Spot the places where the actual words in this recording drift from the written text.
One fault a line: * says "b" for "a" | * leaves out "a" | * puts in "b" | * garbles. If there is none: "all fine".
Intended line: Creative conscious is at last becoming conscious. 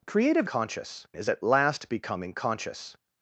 all fine